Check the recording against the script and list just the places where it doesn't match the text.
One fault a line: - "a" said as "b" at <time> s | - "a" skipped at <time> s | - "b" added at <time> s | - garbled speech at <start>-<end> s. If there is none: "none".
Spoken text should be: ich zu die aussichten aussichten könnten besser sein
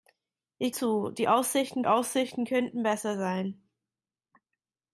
none